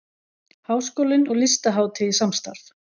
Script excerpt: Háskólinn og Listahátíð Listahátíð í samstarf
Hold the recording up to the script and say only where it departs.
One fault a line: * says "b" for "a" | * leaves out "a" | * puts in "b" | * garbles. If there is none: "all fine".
* leaves out "Listahátíð"